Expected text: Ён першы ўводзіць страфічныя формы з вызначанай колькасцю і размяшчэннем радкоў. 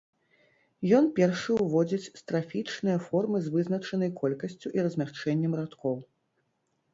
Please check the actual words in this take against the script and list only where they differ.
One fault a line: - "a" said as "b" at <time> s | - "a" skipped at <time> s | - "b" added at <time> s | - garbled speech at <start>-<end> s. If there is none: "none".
none